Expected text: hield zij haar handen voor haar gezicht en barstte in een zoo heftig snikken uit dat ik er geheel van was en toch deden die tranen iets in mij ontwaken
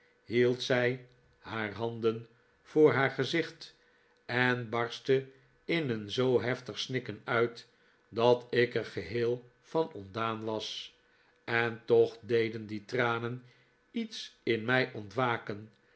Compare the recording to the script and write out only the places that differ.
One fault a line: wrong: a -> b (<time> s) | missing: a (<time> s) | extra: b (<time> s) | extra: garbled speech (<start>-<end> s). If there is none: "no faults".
extra: ontdaan (9.9 s)